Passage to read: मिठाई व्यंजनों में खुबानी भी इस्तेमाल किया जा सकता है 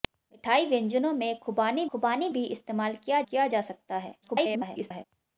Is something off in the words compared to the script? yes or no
yes